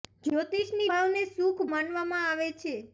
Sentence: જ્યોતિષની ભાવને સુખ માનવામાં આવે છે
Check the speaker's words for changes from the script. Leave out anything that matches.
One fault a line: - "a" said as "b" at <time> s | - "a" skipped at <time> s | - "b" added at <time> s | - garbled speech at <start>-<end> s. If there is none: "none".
none